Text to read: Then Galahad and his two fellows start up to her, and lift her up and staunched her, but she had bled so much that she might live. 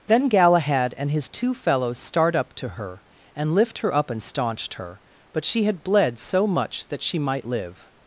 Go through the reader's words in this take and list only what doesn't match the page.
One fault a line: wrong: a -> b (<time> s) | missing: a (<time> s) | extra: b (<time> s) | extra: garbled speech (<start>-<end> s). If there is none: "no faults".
no faults